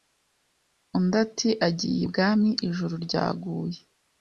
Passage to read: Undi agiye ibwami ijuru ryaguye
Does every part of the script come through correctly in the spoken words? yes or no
no